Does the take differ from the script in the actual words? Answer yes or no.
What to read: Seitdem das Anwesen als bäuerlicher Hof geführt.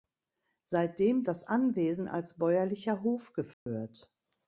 no